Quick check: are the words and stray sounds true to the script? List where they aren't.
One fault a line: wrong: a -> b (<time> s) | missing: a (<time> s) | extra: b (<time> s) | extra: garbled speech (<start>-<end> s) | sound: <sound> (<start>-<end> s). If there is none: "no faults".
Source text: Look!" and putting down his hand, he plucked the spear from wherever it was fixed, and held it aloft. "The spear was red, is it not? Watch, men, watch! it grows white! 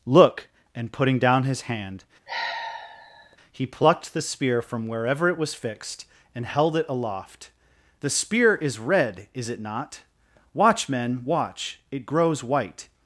sound: sigh (2.3-3.4 s)
wrong: was -> is (8.6 s)